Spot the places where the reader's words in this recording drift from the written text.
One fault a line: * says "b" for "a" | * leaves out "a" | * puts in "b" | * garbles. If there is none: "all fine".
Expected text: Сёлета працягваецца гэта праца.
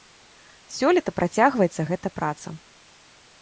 all fine